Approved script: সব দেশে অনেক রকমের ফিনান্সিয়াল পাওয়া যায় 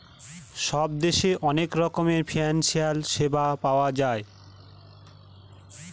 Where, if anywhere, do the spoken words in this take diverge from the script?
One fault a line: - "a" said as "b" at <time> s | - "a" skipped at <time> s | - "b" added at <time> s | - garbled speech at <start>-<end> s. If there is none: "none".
- "সেবা" added at 3.1 s